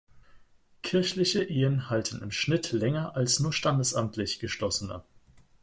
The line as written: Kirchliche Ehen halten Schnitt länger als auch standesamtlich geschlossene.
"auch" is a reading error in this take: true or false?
true